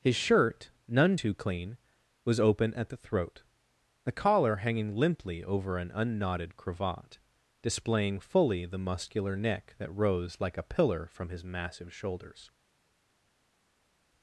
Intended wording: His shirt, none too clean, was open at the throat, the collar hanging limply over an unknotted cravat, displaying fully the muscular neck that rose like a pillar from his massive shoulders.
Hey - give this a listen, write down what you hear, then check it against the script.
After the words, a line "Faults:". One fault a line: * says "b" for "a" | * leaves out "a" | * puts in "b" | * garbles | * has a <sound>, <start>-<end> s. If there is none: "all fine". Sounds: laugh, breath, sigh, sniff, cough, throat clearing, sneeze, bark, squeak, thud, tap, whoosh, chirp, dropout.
His shirt, none too clean, was open at the throat, the collar hanging limply over an unknotted cravat, displaying fully the muscular neck that rose like a pillar from his massive shoulders.
Faults:
all fine